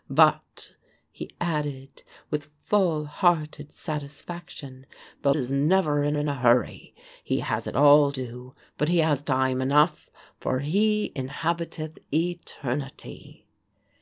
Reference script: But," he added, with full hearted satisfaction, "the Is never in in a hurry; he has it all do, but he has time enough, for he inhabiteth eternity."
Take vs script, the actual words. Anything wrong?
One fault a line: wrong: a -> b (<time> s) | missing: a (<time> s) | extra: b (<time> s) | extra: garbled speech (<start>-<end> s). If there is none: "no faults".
no faults